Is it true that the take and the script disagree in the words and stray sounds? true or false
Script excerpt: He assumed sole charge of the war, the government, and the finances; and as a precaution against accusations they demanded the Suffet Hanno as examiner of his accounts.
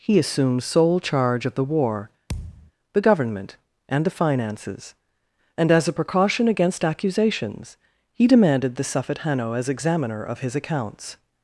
true